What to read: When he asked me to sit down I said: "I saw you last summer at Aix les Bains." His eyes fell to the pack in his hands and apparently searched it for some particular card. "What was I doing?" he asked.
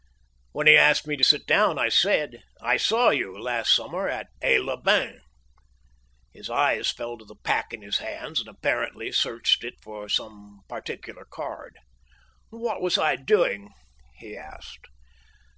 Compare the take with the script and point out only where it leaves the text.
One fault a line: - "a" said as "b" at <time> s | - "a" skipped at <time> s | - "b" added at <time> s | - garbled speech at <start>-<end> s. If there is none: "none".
none